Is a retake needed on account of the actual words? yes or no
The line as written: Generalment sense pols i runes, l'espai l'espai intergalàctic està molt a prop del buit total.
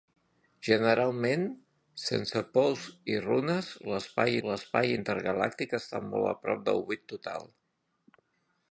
no